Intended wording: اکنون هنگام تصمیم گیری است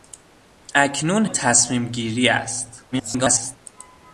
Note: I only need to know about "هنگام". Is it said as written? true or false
false